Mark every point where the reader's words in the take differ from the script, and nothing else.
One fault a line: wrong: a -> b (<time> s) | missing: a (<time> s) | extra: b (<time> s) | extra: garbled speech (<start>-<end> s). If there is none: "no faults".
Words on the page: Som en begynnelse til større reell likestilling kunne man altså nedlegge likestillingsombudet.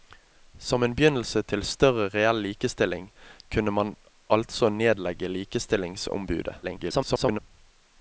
extra: garbled speech (6.6-7.4 s)